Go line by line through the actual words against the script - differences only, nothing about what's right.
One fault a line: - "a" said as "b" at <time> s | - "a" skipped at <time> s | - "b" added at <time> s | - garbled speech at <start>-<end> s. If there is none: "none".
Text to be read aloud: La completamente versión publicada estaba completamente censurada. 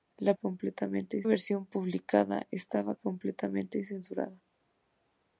none